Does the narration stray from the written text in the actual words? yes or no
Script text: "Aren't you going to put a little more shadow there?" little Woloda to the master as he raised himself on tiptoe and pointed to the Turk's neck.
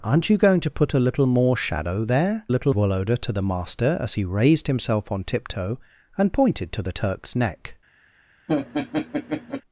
no